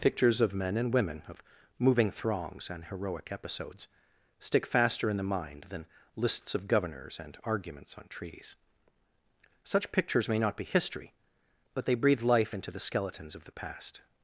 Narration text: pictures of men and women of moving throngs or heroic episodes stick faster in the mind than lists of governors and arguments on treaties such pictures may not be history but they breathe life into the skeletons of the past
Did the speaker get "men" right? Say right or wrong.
right